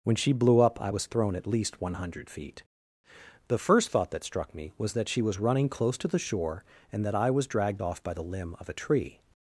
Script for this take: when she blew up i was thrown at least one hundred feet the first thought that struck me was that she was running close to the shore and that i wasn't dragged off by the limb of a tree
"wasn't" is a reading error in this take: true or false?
true